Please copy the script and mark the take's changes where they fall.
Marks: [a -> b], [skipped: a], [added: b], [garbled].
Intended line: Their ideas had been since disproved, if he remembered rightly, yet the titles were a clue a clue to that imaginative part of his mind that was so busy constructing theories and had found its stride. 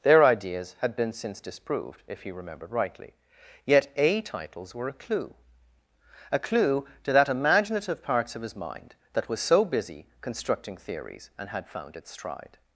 Their ideas had been since disproved, if he remembered rightly, yet [the -> a] titles were a clue a clue to that imaginative [part -> parts] of his mind that was so busy constructing theories and had found its stride.